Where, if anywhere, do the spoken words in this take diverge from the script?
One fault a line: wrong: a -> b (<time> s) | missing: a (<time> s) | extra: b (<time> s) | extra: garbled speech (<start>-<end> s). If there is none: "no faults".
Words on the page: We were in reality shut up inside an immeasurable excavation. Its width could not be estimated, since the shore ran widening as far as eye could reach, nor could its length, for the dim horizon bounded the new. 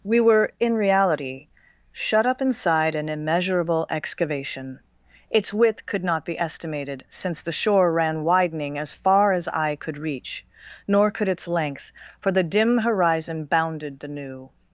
no faults